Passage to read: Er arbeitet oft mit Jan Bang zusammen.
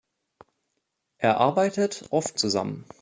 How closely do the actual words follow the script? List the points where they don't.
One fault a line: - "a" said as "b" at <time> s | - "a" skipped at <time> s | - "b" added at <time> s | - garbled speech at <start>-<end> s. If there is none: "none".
- "mit Jan Bang" skipped at 2.4 s